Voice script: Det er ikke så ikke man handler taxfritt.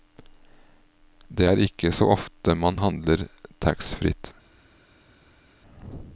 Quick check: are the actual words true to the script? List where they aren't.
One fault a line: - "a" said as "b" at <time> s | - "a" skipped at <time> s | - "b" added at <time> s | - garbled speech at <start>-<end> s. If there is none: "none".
- "ikke" said as "ofte" at 2.2 s